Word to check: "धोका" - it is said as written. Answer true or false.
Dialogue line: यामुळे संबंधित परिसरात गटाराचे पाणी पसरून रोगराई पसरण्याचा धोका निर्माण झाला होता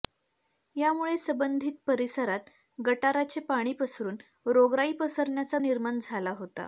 false